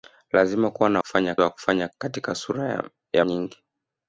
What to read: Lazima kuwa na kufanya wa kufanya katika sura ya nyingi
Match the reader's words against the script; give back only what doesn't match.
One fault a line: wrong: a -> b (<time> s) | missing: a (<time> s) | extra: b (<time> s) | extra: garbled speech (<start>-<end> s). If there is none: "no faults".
no faults